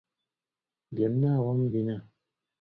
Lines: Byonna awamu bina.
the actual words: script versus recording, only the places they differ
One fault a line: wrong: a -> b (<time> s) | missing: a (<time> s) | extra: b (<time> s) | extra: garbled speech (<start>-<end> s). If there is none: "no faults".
no faults